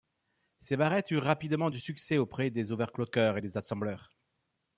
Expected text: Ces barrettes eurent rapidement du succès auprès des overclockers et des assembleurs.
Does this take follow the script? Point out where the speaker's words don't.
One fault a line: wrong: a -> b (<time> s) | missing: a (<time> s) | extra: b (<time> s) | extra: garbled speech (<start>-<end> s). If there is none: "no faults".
no faults